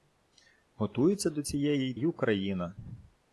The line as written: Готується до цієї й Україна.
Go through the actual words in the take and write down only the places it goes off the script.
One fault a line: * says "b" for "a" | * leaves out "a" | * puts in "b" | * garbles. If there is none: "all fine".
all fine